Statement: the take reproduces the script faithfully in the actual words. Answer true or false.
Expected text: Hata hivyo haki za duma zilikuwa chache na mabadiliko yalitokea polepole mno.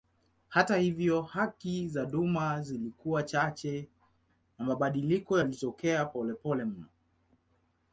true